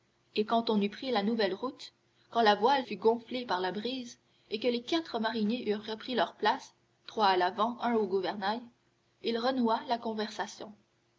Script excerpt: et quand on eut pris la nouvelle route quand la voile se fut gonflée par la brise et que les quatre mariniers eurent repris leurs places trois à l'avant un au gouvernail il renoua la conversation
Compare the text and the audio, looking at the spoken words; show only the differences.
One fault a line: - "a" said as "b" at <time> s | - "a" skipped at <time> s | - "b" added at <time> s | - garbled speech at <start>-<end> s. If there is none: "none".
- "se" skipped at 2.9 s